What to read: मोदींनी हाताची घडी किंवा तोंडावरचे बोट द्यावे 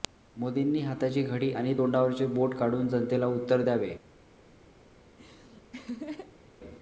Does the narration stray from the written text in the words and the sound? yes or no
yes